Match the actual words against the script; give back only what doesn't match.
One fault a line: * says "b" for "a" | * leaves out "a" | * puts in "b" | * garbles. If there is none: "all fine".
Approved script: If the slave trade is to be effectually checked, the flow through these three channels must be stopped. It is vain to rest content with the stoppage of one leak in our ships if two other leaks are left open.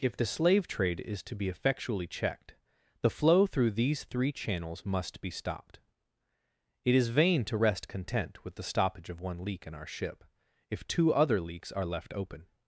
* says "ship" for "ships"